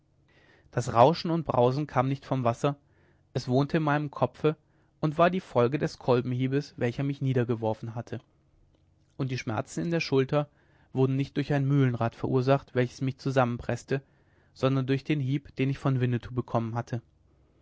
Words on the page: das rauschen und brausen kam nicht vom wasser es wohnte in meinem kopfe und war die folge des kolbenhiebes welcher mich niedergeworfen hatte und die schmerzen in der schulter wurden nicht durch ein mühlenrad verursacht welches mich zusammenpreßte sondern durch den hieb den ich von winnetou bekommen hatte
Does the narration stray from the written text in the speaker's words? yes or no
no